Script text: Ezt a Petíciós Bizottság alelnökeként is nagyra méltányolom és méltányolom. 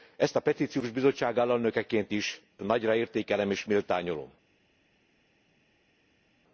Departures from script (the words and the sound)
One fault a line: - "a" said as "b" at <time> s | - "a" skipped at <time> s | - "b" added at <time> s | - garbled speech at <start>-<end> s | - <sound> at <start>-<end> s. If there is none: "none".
- "méltányolom" said as "értékelem" at 2.9 s